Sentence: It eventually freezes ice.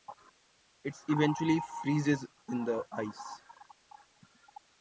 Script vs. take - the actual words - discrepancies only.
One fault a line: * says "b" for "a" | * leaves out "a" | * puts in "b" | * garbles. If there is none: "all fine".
* puts in "in the"